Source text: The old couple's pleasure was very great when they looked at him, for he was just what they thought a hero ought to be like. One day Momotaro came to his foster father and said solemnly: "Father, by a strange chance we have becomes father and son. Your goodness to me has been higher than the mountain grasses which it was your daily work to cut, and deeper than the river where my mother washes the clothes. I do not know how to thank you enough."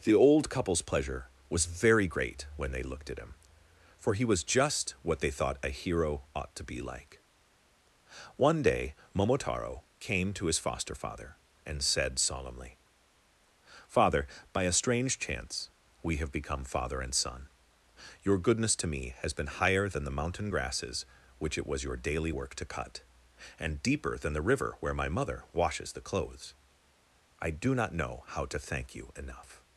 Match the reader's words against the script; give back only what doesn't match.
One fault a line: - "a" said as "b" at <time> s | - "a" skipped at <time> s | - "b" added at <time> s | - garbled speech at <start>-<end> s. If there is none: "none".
- "becomes" said as "become" at 16.3 s